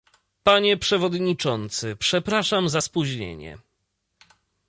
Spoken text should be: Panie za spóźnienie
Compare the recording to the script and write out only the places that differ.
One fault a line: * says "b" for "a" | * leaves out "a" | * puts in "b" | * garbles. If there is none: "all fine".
* puts in "przewodniczący przepraszam"